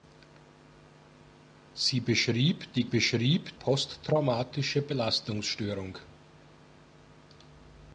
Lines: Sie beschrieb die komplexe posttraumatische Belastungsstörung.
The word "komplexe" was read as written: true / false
false